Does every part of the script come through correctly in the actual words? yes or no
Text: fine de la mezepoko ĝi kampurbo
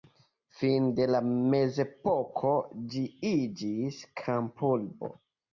no